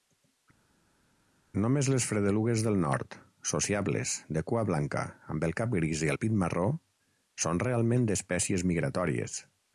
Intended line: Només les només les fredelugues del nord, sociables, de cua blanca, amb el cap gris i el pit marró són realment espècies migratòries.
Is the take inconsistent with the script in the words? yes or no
yes